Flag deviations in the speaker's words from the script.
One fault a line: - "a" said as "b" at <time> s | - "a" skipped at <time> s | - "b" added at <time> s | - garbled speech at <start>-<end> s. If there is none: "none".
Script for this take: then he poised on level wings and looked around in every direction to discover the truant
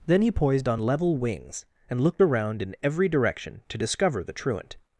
none